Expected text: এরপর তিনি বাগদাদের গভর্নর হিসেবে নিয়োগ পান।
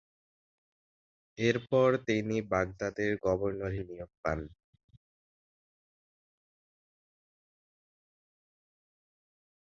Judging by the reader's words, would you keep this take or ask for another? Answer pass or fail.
fail